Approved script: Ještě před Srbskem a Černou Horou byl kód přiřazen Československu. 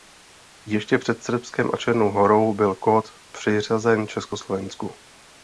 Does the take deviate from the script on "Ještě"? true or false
false